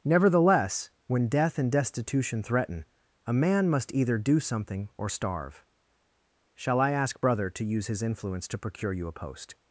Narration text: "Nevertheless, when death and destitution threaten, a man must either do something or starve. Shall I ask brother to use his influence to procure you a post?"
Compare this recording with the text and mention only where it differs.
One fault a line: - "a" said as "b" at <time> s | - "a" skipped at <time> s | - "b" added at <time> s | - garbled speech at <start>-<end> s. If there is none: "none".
none